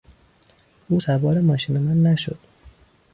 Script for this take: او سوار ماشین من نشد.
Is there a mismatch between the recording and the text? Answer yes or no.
no